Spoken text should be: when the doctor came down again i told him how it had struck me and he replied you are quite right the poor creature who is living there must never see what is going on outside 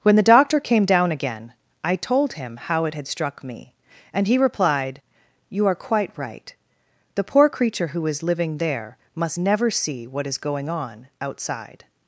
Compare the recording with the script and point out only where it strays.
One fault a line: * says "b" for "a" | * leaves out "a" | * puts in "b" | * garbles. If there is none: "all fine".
all fine